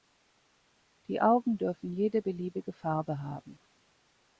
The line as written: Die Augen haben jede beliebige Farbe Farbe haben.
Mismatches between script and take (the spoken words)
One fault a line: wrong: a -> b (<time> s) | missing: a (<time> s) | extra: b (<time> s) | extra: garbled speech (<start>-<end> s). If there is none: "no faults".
wrong: haben -> dürfen (1.6 s)
missing: Farbe (3.2 s)